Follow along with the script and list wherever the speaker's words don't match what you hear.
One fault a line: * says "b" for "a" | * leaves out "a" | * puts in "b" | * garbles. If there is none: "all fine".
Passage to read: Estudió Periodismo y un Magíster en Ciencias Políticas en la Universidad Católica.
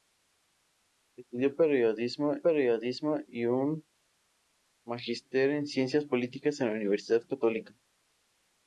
* puts in "Periodismo"